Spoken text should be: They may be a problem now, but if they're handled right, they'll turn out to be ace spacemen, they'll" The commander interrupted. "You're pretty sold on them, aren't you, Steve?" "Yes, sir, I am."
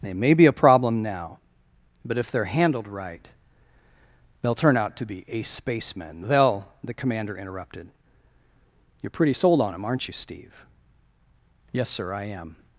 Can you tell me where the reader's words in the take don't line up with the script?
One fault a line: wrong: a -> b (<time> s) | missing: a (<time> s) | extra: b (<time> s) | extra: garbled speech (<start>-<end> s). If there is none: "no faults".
no faults